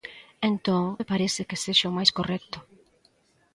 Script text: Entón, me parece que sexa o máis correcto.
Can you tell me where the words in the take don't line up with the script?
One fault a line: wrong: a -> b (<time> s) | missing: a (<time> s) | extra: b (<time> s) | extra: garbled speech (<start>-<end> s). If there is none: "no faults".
no faults